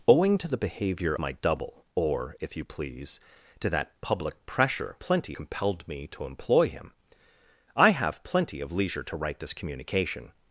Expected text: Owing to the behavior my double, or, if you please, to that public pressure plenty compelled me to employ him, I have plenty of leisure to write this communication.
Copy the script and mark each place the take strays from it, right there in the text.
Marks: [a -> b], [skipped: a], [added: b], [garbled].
Owing to the behavior my double, or, if you please, to that public pressure plenty compelled me to employ him, I have plenty of leisure to write this communication.